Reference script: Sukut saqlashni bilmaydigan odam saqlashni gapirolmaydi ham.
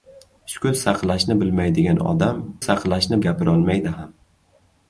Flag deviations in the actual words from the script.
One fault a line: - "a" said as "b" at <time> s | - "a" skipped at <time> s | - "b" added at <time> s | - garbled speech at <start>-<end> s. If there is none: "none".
none